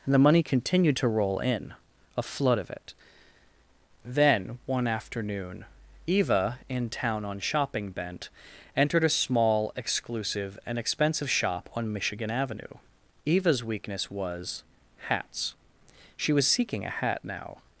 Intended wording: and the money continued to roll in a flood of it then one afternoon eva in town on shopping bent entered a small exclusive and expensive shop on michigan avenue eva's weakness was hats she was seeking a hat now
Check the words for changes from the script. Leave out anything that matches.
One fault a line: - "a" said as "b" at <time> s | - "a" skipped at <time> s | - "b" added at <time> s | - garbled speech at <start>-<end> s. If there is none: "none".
none